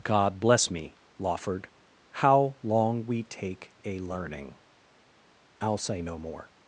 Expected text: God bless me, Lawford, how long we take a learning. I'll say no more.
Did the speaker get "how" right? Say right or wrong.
right